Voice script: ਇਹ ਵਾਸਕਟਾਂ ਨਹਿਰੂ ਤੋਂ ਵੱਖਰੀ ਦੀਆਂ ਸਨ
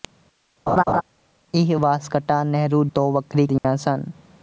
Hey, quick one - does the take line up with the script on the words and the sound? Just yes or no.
no